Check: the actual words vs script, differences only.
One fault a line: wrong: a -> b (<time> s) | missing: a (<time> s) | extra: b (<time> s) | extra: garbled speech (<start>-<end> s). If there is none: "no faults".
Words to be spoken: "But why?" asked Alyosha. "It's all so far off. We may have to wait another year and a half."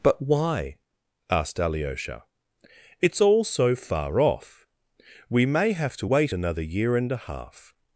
no faults